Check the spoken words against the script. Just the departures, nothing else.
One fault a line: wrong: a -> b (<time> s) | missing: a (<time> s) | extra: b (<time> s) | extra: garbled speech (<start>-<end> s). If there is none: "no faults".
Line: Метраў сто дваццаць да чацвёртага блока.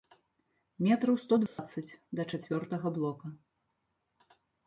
no faults